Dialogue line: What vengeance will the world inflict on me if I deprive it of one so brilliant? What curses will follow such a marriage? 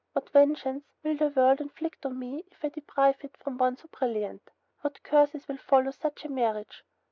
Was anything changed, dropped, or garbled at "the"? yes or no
no